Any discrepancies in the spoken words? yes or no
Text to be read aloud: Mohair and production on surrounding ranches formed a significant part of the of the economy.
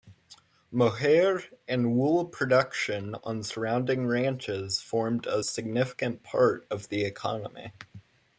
yes